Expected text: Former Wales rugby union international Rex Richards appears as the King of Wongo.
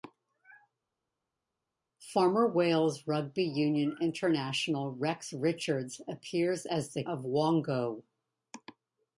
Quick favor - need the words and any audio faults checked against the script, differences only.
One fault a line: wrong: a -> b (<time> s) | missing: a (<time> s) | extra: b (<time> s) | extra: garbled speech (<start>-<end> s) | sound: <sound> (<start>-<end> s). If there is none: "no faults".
missing: King (7.0 s)